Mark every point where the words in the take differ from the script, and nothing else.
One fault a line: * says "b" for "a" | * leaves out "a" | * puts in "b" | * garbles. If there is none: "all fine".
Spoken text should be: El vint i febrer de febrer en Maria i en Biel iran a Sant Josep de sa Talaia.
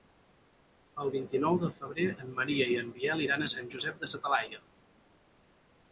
* says "nou" for "febrer"